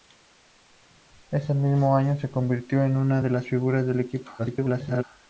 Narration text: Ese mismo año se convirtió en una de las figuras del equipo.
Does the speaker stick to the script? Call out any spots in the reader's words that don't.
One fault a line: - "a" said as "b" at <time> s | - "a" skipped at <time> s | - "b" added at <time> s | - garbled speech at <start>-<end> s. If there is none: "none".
- garbled speech at 4.4-5.0 s